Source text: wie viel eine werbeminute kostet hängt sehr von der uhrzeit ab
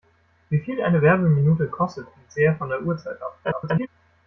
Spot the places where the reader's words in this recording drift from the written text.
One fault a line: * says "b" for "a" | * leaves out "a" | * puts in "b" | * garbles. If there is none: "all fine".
* garbles